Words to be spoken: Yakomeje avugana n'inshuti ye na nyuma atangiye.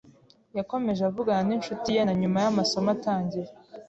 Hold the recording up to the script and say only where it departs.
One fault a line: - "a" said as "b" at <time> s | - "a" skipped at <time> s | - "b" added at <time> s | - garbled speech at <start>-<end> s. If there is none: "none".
- "y'amasomo" added at 2.4 s